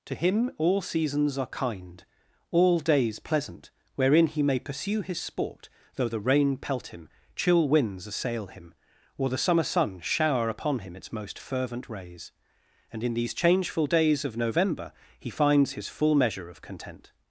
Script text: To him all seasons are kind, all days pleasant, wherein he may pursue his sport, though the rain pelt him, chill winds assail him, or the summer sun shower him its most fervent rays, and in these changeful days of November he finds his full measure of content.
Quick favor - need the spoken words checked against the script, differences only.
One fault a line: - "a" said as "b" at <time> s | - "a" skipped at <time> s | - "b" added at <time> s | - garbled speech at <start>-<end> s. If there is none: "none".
- "upon" added at 10.5 s